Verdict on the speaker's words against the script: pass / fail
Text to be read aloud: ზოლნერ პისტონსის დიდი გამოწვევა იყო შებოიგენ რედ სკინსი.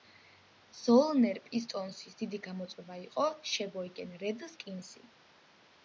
pass